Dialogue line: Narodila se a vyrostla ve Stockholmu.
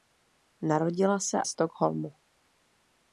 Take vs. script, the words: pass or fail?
fail